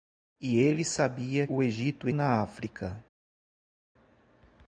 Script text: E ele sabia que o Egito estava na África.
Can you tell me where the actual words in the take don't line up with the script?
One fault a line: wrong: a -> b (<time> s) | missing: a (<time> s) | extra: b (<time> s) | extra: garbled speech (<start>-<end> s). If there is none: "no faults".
missing: que (1.4 s)
missing: estava (2.1 s)